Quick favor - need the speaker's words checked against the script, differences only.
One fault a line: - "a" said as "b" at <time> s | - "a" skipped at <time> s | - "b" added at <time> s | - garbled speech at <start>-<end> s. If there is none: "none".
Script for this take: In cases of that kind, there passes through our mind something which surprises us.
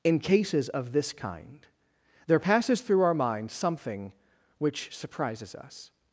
- "that" said as "this" at 0.9 s